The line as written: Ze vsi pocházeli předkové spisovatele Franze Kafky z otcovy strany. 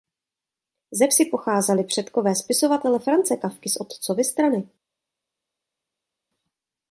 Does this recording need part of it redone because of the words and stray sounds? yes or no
no